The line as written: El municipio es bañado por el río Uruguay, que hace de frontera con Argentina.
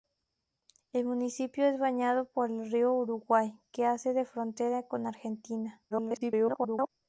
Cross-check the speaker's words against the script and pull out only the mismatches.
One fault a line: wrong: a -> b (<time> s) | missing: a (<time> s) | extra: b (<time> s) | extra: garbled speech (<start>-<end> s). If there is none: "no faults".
extra: garbled speech (5.9-6.9 s)